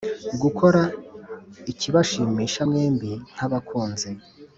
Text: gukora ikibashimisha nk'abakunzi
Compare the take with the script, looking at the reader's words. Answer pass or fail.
fail